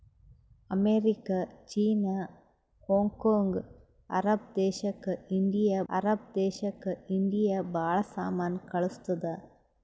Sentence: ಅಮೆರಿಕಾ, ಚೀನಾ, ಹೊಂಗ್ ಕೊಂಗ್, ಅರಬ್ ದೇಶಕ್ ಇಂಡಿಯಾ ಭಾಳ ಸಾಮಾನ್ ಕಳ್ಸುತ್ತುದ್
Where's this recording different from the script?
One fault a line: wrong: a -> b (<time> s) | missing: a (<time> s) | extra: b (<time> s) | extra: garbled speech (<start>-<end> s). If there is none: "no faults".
extra: ಅರಬ್ ದೇಶಕ್ ಇಂಡಿಯಾ (5.9 s)